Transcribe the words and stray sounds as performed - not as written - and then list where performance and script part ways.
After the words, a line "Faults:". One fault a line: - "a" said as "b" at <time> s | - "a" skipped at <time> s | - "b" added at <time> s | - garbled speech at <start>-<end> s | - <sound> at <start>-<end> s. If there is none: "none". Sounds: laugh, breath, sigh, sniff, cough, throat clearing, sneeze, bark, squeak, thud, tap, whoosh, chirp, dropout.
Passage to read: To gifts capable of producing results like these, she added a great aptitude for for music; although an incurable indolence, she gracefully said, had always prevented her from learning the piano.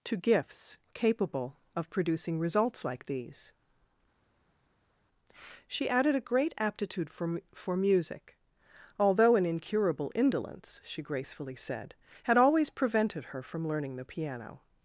To gifts capable of producing results like these, she added a great aptitude for for music; although an incurable indolence, she gracefully said, had always prevented her from learning the piano.
Faults:
none